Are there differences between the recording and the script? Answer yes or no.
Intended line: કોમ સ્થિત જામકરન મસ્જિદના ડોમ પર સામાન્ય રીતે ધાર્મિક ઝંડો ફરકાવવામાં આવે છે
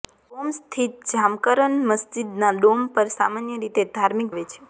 yes